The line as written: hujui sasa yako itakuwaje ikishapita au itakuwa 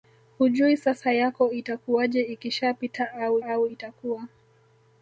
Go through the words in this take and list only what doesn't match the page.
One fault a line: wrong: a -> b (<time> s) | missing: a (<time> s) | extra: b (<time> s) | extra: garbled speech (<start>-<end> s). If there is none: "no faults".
extra: au (3.4 s)